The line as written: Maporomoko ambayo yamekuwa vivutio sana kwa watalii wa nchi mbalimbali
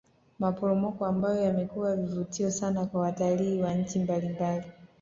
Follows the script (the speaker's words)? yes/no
yes